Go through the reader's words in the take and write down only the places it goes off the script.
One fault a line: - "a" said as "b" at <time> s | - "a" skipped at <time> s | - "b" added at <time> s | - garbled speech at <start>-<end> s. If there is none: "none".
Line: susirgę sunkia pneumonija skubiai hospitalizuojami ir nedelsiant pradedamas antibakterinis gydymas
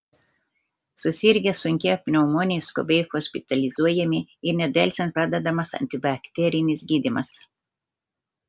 none